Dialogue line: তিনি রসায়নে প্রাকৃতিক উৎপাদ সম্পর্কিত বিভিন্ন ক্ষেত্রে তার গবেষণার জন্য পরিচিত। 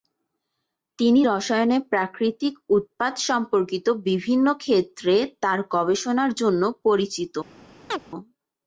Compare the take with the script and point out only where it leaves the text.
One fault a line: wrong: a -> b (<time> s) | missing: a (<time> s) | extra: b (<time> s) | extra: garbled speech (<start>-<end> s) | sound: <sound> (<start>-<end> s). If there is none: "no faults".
sound: chirp (7.9-8.0 s)